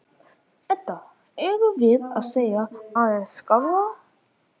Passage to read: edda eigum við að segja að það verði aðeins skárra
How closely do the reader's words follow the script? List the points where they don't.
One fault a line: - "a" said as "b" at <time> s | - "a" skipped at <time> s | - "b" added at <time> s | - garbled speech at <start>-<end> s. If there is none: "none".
- "að það verði" skipped at 2.6 s